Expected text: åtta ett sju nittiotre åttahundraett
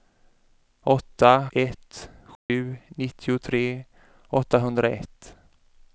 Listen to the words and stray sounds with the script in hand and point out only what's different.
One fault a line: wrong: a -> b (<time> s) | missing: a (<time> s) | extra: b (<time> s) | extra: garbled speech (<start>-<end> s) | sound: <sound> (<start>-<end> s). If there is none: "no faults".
sound: dropout (2.4-2.5 s)